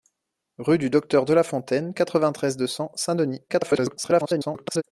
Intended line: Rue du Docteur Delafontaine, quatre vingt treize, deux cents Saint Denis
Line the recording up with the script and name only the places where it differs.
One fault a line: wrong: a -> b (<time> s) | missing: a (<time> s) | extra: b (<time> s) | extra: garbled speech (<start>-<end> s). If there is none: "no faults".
extra: garbled speech (3.5-4.8 s)